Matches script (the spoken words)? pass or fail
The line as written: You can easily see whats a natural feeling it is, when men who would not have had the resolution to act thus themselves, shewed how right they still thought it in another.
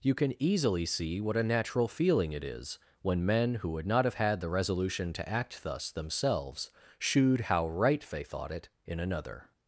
fail